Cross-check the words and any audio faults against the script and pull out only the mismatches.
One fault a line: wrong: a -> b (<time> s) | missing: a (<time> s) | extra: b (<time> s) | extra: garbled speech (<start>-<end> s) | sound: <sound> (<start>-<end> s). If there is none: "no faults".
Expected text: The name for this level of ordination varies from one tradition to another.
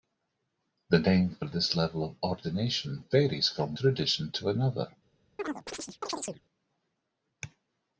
missing: one (3.8 s)
sound: chirp (5.4-6.4 s)